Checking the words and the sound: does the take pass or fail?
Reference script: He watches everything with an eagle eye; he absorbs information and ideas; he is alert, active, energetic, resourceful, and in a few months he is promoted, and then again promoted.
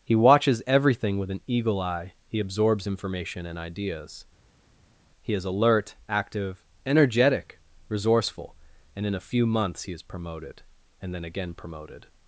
pass